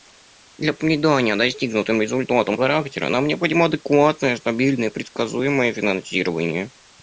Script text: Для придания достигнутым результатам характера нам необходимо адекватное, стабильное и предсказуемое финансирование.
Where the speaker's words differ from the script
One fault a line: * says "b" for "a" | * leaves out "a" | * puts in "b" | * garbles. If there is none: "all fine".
all fine